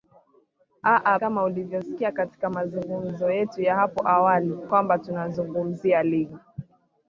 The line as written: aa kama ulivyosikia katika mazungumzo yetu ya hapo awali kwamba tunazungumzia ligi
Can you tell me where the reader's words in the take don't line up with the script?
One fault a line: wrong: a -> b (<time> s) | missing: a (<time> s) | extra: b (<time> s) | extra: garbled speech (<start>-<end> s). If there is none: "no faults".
no faults